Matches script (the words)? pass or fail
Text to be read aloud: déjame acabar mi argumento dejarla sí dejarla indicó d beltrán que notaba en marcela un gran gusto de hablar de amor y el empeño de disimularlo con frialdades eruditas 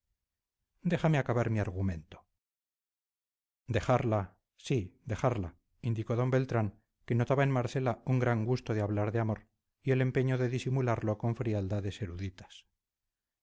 pass